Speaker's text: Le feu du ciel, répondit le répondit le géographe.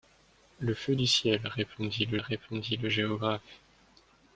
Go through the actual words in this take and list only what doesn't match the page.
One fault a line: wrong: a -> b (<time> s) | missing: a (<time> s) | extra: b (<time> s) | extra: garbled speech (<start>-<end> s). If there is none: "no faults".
no faults